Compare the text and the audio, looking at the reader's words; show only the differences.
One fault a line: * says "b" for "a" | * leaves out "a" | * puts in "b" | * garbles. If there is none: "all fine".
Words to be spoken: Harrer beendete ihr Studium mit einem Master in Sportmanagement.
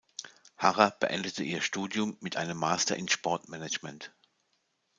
all fine